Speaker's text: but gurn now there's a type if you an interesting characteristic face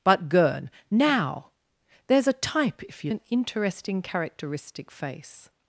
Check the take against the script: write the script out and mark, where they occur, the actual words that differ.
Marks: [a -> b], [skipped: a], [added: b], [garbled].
but gurn now there's a type if you an interesting characteristic face